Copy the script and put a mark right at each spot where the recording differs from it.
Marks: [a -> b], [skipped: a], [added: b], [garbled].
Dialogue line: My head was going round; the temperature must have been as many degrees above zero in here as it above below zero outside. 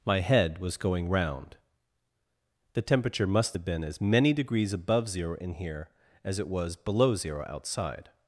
My head was going round; the temperature must have been as many degrees above zero in here as it [above -> was] below zero outside.